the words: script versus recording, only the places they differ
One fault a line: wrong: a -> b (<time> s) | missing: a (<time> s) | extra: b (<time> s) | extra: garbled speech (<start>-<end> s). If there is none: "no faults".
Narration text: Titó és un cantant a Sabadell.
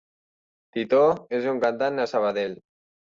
no faults